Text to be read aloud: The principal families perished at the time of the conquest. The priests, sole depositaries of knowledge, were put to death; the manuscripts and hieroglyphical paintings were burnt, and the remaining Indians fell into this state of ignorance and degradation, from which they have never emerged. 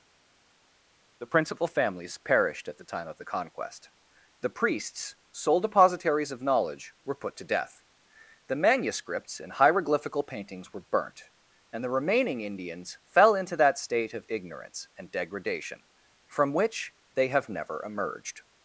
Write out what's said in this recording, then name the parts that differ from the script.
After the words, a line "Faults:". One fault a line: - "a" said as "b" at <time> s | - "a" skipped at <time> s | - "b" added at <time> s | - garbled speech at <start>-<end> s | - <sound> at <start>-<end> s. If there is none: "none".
The principal families perished at the time of the conquest. The priests, sole depositaries of knowledge, were put to death; the manuscripts and hieroglyphical paintings were burnt, and the remaining Indians fell into that state of ignorance and degradation, from which they have never emerged.
Faults:
- "this" said as "that" at 13.6 s